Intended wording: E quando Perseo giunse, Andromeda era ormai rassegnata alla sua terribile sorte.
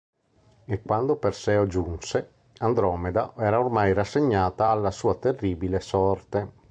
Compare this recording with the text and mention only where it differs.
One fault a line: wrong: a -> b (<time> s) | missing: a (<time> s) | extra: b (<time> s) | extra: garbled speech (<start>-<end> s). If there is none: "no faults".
no faults